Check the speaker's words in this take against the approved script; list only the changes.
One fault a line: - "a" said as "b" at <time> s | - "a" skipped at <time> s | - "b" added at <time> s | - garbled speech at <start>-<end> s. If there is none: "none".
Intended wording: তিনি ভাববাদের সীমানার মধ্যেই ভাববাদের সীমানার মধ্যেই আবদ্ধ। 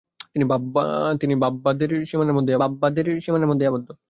none